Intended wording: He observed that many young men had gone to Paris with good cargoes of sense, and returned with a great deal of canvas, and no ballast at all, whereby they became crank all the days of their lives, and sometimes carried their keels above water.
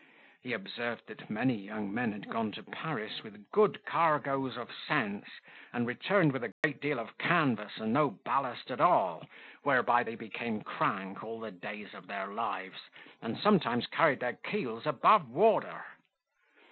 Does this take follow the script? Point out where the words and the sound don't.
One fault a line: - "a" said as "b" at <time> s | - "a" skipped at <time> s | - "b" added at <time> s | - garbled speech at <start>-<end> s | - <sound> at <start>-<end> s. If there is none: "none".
- dropout at 6.5-6.6 s